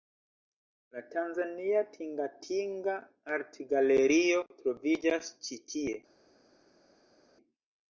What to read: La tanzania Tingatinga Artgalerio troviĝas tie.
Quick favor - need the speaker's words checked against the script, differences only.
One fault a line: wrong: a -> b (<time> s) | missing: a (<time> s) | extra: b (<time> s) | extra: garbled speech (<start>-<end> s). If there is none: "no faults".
extra: ĉi (5.5 s)